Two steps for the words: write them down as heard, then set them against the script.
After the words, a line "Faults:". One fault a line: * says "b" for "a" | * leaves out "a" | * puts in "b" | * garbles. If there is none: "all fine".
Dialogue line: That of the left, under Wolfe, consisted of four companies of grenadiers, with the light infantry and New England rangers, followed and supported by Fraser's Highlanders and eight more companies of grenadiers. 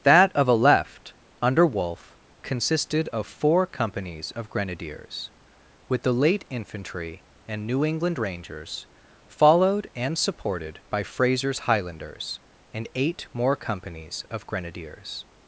That of a left, under Wolfe, consisted of four companies of grenadiers, with the late infantry and New England rangers, followed and supported by Fraser's Highlanders and eight more companies of grenadiers.
Faults:
* says "a" for "the"
* says "late" for "light"